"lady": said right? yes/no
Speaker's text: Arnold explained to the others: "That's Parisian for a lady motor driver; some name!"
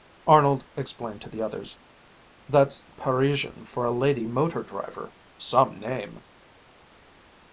yes